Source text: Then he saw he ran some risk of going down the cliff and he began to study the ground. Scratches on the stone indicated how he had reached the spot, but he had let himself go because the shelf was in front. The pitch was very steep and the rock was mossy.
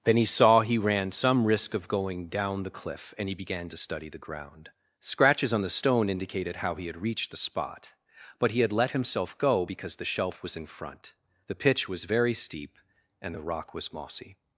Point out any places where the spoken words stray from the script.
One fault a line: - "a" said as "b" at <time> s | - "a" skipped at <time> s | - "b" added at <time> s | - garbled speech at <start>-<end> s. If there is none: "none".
none